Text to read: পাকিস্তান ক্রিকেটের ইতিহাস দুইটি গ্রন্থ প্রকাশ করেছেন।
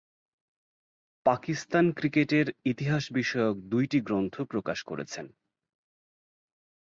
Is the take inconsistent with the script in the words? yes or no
yes